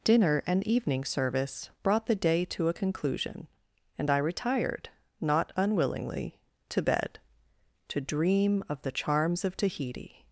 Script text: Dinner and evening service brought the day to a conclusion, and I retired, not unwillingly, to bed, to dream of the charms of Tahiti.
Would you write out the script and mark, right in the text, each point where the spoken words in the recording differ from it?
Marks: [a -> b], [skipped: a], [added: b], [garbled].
Dinner and evening service brought the day to a conclusion, and I retired, not unwillingly, to bed, to dream of the charms of Tahiti.